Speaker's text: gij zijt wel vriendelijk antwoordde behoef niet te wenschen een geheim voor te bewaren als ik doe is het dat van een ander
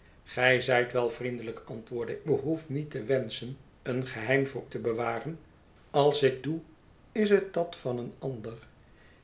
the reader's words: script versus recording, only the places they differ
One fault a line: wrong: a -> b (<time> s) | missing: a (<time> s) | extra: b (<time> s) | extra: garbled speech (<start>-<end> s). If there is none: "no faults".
no faults